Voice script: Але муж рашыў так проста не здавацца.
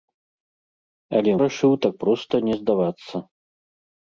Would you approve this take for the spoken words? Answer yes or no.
no